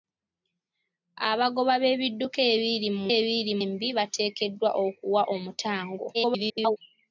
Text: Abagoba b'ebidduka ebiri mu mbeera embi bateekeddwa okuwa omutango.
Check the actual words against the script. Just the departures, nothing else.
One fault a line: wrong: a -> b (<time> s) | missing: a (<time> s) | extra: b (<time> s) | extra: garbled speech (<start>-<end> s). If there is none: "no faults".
wrong: mbeera -> ebiri (3.2 s)
extra: garbled speech (6.1-6.8 s)